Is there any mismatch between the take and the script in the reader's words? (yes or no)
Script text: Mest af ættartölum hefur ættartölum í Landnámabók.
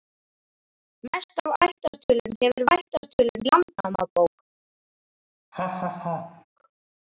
no